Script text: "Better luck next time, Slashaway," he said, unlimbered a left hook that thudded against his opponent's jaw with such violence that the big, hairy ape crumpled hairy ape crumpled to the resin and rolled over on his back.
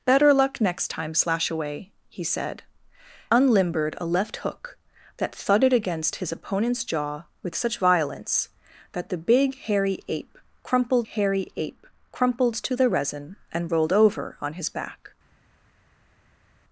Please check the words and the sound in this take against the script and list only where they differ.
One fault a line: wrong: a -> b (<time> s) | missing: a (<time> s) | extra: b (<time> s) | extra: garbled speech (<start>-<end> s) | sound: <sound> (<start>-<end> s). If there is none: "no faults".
no faults